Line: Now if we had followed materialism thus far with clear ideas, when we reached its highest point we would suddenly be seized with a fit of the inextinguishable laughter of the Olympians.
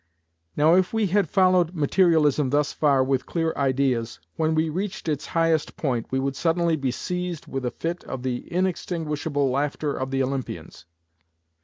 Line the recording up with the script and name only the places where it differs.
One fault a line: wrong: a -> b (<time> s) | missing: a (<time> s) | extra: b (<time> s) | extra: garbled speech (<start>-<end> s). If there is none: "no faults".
no faults